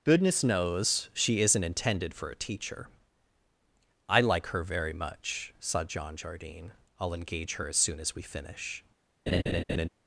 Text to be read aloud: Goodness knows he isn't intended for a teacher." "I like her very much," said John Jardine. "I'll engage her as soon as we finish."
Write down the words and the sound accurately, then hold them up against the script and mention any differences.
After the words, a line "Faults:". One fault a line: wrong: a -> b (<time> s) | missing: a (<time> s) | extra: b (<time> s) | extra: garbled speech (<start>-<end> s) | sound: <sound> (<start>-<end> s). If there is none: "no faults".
Goodness knows she isn't intended for a teacher." "I like her very much," said John Jardine. "I'll engage her as soon as we finish."
Faults:
wrong: he -> she (1.1 s)
sound: laugh (9.3-9.9 s)